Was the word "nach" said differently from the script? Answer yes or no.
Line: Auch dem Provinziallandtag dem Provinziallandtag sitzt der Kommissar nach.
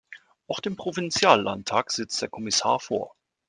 yes